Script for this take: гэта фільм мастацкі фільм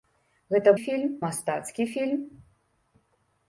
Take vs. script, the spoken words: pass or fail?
pass